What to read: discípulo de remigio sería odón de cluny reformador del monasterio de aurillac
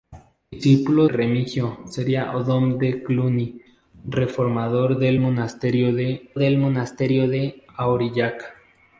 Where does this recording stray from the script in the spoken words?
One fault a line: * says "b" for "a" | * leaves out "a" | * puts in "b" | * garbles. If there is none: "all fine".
* leaves out "de"
* puts in "del monasterio de"